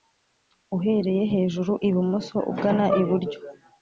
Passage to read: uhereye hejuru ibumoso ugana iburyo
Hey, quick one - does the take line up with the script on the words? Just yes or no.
yes